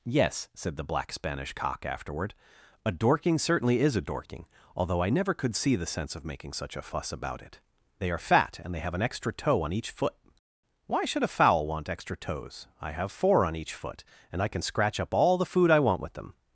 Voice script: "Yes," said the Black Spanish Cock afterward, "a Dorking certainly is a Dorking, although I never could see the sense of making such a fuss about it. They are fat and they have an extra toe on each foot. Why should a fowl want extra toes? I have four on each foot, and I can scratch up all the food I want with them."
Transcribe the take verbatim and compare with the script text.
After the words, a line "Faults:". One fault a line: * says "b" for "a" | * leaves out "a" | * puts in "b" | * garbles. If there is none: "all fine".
"Yes," said the Black Spanish Cock afterward, "a Dorking certainly is a Dorking, although I never could see the sense of making such a fuss about it. They are fat and they have an extra toe on each foot. Why should a fowl want extra toes? I have four on each foot, and I can scratch up all the food I want with them."
Faults:
all fine